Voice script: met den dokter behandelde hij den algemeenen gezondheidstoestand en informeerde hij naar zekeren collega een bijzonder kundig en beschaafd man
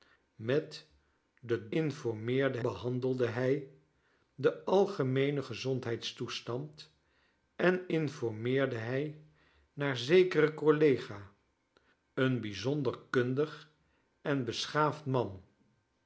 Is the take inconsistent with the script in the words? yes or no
yes